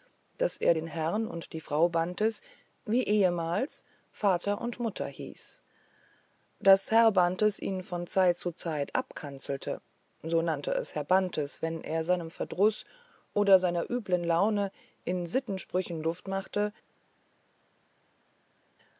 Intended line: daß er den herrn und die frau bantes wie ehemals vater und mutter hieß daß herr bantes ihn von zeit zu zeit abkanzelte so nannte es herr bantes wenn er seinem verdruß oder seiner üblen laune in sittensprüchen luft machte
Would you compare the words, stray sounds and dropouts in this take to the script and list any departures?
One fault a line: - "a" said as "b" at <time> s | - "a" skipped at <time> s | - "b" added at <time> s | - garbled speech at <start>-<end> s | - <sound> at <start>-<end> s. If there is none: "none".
none